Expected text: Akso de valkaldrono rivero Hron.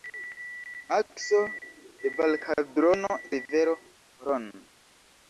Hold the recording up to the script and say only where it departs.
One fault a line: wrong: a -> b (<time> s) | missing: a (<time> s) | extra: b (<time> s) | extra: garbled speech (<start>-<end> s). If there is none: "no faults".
no faults